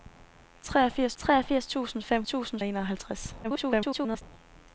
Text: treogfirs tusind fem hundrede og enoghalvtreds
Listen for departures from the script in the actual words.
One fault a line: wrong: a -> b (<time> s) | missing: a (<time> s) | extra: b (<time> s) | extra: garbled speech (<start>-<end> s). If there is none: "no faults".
extra: treogfirs (1.2 s)
wrong: hundrede -> tusind (2.2 s)
extra: garbled speech (3.4-4.2 s)